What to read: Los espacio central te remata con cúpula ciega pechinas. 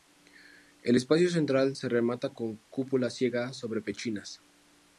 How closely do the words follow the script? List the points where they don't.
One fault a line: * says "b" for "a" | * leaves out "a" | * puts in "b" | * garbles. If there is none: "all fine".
* says "El" for "Los"
* says "se" for "te"
* puts in "sobre"